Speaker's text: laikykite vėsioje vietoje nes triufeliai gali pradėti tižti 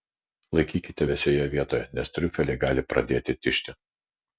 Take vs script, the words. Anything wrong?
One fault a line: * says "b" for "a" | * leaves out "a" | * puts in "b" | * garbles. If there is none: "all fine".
all fine